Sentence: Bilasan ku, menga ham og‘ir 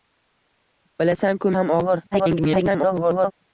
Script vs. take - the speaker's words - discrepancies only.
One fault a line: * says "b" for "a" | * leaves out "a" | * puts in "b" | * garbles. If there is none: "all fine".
* leaves out "menga"
* garbles